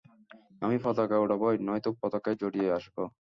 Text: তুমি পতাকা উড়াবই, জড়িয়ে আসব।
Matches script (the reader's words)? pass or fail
fail